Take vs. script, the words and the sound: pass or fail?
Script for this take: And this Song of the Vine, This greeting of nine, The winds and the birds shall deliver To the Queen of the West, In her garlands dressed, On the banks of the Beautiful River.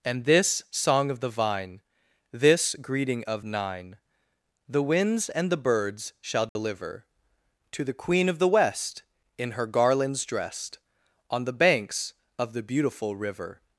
fail